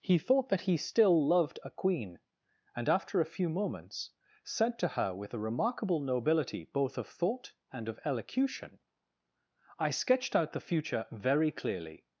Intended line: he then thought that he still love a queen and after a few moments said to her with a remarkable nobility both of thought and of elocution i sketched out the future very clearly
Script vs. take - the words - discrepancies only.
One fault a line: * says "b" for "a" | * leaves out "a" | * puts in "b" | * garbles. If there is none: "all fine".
* leaves out "then"
* says "loved" for "love"